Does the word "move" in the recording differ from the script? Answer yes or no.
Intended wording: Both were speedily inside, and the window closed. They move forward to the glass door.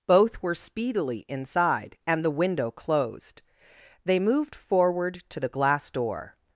yes